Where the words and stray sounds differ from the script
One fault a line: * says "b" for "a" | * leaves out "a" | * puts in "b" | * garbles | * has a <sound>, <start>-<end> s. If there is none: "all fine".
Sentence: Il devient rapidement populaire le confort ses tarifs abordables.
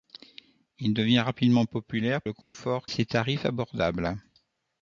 * has a dropout, 2.4-2.5 s